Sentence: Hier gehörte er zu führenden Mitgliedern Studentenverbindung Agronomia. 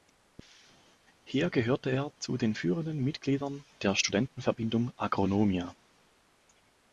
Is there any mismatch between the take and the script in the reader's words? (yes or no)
yes